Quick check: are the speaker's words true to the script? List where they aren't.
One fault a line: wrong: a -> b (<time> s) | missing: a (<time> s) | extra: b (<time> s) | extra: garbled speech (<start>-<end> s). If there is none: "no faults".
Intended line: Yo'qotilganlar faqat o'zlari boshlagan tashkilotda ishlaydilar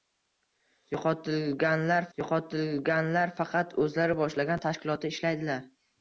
extra: yo'qotilganlar (2.2 s)